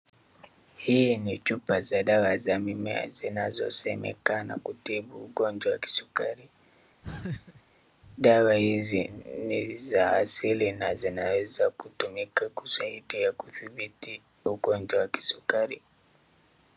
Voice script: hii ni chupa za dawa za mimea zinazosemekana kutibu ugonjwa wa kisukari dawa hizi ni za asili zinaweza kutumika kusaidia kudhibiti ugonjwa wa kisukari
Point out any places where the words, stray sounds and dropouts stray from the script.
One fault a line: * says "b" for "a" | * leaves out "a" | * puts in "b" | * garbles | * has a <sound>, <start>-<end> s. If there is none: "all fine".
* has a laugh, 7.0-7.6 s
* puts in "na"